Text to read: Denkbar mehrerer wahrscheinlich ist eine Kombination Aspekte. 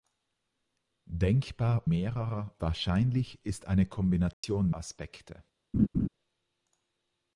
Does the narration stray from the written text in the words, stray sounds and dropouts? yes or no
yes